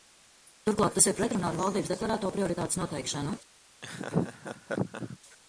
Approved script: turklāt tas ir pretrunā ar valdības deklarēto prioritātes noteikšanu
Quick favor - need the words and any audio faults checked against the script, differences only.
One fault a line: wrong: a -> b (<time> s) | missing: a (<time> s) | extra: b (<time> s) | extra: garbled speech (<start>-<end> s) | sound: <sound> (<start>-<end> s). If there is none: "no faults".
sound: laugh (3.8-5.2 s)